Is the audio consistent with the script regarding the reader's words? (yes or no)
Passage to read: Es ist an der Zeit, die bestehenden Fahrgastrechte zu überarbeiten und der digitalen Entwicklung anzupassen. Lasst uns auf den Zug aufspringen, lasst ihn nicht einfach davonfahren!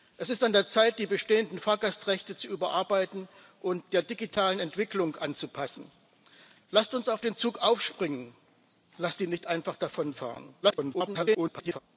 no